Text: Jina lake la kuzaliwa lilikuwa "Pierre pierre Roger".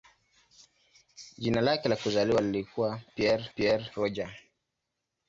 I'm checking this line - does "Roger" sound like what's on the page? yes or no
yes